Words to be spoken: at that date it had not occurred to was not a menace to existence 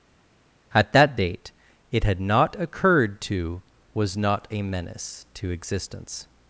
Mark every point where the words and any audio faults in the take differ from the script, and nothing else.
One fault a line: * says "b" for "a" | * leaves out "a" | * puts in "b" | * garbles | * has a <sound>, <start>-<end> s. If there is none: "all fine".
all fine